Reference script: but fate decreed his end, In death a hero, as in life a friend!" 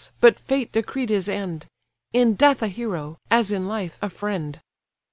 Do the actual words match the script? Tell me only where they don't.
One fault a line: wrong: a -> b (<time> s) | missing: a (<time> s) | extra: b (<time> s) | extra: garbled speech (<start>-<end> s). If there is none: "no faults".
no faults